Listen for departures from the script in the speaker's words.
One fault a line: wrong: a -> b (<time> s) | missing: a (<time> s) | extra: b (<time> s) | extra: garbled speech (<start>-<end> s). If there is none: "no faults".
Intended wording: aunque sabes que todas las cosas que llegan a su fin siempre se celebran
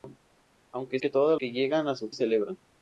missing: sabes (1.0 s)
missing: las cosas (1.4 s)
missing: fin siempre se (2.1 s)